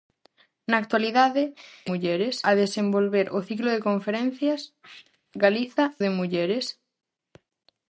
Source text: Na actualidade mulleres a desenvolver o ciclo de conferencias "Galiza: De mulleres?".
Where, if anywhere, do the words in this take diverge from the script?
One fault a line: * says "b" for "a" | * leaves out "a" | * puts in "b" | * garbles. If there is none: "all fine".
all fine